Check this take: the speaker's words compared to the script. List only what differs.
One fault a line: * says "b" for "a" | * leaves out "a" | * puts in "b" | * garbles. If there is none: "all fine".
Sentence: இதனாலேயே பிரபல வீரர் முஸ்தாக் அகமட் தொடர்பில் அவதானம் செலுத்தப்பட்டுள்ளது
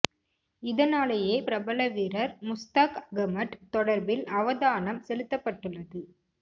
all fine